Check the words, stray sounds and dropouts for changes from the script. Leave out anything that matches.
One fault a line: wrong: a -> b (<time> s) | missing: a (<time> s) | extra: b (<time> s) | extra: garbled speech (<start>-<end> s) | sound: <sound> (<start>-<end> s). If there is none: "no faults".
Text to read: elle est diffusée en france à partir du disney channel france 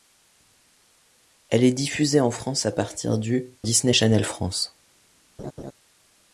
sound: laugh (5.4-5.7 s)